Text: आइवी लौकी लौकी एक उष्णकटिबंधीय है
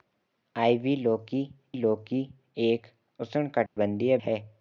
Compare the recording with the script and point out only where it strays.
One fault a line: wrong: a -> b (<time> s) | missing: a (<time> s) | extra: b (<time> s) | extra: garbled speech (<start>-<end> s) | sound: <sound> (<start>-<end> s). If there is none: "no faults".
sound: dropout (3.7-3.8 s)